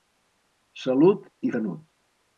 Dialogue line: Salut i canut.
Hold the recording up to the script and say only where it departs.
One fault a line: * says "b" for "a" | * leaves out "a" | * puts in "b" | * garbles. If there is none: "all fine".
all fine